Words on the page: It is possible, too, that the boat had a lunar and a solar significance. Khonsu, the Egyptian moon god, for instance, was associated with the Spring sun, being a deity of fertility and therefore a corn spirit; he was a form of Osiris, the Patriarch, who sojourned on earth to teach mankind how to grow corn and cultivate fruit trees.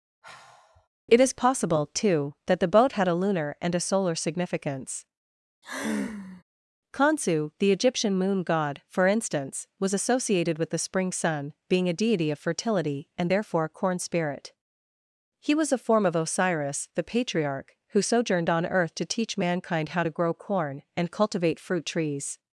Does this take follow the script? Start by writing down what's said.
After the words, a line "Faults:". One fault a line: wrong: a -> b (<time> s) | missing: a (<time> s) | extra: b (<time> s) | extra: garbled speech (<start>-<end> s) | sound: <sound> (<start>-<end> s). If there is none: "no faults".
It is possible, too, that the boat had a lunar and a solar significance. Khonsu, the Egyptian moon god, for instance, was associated with the Spring sun, being a deity of fertility and therefore a corn spirit; he was a form of Osiris, the Patriarch, who sojourned on earth to teach mankind how to grow corn and cultivate fruit trees.
Faults:
sound: sigh (0.2-0.9 s)
sound: sigh (5.6-6.4 s)